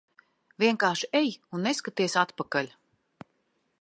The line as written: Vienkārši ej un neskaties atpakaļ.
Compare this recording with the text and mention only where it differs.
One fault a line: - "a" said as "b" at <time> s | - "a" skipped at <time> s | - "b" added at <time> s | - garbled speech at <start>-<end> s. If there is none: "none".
none